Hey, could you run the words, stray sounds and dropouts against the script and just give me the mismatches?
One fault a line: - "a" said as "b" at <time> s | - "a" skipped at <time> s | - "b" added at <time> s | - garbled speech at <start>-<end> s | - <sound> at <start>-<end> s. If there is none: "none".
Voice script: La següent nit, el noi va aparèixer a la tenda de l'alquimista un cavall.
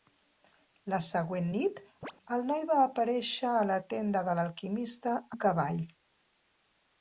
- chirp at 2.0-2.1 s